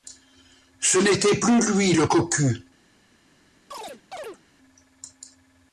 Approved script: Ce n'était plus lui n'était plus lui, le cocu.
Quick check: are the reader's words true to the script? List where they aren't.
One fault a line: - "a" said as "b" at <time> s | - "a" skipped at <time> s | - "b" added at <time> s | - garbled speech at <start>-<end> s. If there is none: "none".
- "n'était plus lui" skipped at 1.9 s